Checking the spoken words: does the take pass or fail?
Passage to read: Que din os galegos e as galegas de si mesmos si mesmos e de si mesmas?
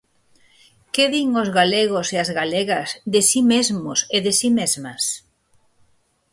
fail